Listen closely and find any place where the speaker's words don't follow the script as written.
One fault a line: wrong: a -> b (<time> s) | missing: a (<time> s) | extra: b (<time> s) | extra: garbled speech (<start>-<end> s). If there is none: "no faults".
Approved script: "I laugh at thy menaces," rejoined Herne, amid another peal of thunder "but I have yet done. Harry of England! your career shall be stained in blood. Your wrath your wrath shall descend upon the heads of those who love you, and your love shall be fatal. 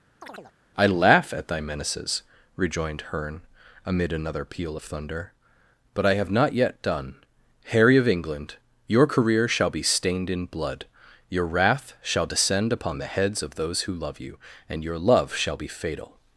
extra: not (6.3 s)
missing: your wrath (11.9 s)